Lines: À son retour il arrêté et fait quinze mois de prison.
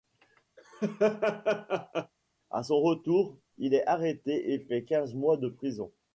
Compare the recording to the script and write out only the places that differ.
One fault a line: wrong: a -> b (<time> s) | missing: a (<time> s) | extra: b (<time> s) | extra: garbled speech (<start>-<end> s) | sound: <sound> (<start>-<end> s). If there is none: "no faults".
sound: laugh (0.6-2.1 s)
extra: est (3.7 s)